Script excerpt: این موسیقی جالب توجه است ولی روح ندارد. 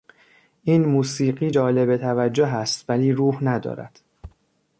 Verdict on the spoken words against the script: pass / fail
pass